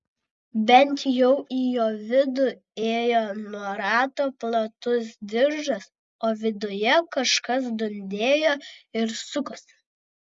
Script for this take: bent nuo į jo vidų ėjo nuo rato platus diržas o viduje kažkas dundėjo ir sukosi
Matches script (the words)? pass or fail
fail